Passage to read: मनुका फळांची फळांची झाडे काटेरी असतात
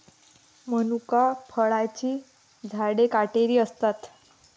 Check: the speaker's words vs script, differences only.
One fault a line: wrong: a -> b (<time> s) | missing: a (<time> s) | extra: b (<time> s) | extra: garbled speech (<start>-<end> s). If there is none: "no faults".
missing: फळांची (2.2 s)